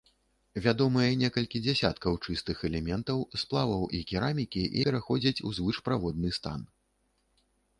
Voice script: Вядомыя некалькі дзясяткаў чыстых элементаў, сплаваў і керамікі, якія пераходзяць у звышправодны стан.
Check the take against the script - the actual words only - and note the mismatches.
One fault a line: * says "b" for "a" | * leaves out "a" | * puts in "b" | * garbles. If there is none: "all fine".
* leaves out "якія"